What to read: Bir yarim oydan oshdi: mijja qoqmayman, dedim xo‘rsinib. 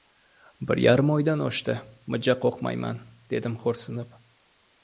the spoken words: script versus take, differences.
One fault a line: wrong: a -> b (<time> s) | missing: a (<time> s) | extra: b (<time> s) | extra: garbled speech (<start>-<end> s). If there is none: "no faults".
no faults